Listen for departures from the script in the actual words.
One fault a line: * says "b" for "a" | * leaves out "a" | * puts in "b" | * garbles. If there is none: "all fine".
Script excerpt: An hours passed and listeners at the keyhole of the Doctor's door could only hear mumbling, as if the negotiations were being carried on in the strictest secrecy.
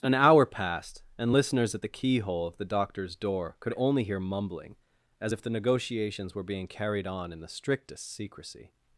* says "hour" for "hours"